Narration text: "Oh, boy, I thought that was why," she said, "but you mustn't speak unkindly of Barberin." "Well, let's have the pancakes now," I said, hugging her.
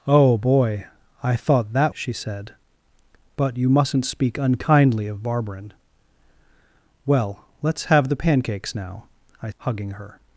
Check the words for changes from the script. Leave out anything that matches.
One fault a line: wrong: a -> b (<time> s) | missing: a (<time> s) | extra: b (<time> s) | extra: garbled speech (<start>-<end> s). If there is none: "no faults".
missing: was why (1.9 s)
missing: said (9.5 s)